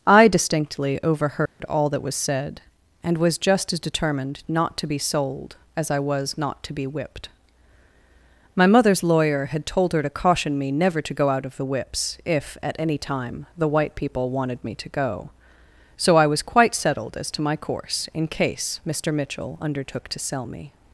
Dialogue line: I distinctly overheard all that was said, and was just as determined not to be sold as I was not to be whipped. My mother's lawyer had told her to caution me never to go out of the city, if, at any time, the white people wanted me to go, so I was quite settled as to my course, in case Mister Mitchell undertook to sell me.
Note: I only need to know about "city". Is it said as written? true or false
false